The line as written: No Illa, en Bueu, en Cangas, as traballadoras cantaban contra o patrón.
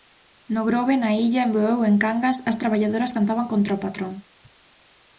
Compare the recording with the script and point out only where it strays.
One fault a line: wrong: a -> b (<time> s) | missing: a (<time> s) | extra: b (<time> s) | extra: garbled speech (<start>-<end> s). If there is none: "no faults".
extra: Grove na (0.7 s)